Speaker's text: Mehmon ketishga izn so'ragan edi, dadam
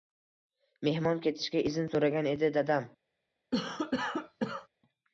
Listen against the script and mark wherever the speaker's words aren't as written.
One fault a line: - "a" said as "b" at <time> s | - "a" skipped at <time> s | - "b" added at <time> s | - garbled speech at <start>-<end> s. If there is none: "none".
none